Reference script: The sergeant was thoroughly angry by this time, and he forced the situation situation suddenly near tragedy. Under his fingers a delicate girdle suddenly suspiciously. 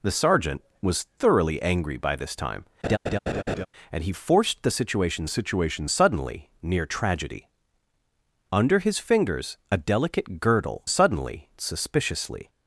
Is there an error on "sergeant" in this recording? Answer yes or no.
no